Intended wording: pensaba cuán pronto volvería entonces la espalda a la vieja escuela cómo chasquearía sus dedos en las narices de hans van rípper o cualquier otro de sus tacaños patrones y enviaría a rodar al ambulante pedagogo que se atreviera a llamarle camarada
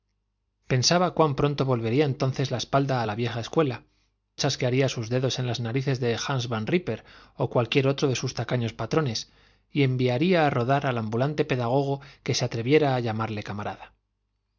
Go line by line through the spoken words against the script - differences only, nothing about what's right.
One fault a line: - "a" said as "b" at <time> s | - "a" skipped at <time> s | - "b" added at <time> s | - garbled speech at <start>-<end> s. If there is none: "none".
- "cómo" skipped at 3.8 s